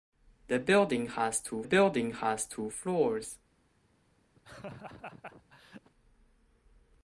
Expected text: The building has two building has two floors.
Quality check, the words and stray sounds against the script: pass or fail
fail